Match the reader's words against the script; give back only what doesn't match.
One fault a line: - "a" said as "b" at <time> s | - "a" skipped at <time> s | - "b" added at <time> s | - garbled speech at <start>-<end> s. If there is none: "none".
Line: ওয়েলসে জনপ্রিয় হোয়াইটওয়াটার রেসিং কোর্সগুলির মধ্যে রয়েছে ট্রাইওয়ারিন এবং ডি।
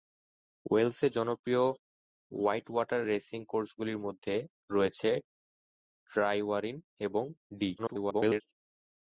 - garbled speech at 7.8-8.4 s